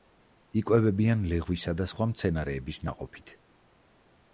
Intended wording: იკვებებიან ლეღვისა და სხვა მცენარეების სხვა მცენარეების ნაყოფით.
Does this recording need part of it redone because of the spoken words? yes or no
yes